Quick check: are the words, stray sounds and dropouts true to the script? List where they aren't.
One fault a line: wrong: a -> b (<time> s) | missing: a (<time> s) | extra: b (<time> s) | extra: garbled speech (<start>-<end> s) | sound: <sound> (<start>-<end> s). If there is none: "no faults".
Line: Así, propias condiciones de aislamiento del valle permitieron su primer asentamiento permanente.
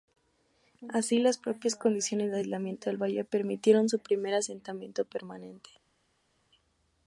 extra: las (1.2 s)